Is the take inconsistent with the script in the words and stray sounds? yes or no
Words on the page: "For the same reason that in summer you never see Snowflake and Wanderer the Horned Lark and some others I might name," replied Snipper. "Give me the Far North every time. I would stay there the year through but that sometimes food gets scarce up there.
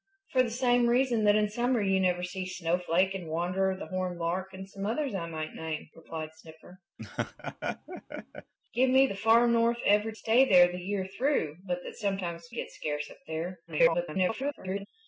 yes